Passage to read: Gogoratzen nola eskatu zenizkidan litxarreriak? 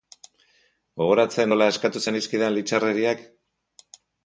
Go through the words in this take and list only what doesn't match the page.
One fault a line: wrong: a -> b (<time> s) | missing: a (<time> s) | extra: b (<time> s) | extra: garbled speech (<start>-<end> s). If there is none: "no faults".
no faults